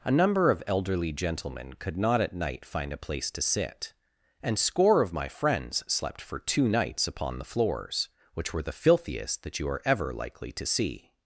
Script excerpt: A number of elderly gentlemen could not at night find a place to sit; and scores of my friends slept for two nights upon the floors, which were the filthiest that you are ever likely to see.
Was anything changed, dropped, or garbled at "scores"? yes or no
yes